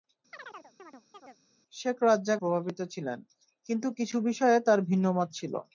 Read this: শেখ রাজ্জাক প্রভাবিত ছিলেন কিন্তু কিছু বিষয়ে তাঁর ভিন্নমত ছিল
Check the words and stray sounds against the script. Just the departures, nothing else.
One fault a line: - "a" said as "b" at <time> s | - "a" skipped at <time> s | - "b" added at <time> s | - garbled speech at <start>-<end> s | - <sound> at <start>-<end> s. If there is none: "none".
- chirp at 0.3-1.4 s